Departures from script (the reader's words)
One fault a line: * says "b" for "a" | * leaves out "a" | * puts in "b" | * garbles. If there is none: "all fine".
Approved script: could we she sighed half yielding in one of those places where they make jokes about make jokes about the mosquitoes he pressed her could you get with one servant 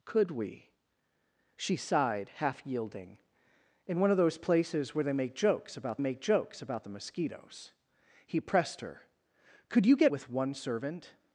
all fine